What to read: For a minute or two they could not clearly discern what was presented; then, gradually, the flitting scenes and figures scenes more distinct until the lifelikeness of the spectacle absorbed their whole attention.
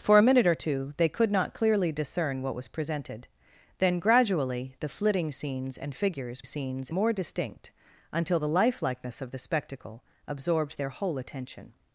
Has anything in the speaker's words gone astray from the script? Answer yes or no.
no